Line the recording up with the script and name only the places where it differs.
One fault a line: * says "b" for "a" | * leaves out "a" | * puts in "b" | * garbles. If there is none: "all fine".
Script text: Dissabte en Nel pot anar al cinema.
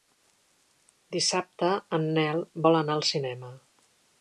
* says "vol" for "pot"